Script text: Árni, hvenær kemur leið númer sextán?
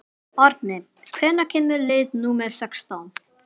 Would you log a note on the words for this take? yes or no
no